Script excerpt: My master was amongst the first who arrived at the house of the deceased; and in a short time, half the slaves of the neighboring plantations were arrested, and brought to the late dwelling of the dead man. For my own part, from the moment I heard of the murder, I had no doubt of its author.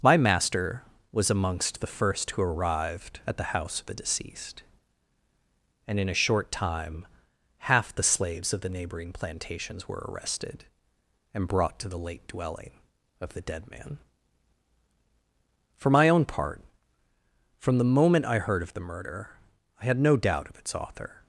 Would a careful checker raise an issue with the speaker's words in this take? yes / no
no